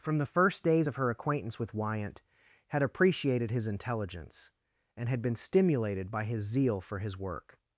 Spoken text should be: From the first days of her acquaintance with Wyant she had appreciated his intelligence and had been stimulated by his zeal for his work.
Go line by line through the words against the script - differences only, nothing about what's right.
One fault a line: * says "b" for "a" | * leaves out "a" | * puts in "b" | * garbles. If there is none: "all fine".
* leaves out "she"